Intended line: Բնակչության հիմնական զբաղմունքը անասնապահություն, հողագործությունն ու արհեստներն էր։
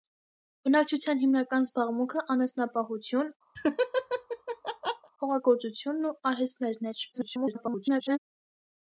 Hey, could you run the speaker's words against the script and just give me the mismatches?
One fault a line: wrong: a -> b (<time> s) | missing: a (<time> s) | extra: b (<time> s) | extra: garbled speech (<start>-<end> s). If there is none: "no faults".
extra: garbled speech (7.1-8.2 s)